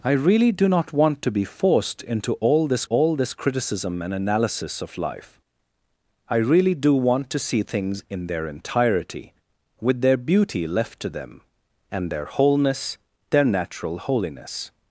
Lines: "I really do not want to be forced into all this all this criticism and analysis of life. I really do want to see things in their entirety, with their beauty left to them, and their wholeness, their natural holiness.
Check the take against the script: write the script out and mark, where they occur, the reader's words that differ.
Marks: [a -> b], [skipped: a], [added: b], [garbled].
"I really do not want to be forced into all this all this criticism and analysis of life. I really do want to see things in their entirety, with their beauty left to them, and their wholeness, their natural holiness.